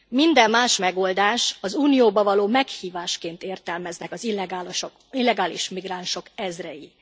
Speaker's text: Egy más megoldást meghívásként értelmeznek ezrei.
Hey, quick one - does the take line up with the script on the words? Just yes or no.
no